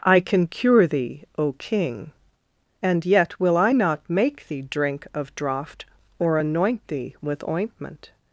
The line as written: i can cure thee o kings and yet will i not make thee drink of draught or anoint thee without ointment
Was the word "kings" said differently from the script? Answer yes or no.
yes